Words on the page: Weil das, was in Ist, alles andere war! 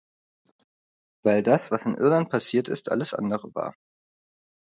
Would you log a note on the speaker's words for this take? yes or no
yes